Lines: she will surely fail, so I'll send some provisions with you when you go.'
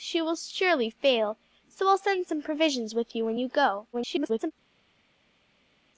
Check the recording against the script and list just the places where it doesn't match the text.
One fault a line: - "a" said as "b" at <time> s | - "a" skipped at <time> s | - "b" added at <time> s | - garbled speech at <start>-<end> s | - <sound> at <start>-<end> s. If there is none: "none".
- garbled speech at 3.9-4.5 s